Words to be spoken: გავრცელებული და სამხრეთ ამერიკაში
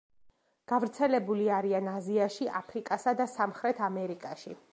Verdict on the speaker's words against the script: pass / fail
fail